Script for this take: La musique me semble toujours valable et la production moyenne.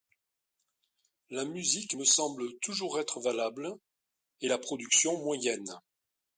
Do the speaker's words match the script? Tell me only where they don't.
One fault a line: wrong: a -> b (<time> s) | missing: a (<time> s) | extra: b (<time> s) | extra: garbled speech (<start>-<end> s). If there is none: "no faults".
extra: être (3.0 s)